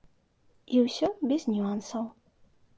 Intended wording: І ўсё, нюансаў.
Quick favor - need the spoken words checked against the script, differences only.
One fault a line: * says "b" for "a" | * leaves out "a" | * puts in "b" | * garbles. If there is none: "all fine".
* puts in "без"